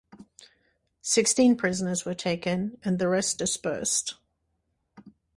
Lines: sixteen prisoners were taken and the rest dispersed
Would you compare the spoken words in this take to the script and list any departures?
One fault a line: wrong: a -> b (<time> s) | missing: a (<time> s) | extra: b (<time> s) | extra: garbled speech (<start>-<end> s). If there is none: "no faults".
no faults